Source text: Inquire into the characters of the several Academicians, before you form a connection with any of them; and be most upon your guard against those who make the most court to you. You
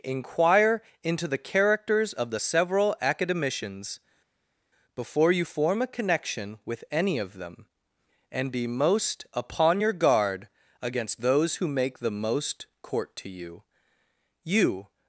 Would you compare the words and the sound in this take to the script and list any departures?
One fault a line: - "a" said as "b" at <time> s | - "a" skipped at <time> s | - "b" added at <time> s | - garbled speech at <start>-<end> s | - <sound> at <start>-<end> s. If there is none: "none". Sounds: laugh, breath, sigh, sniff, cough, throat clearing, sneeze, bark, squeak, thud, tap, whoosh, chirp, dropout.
none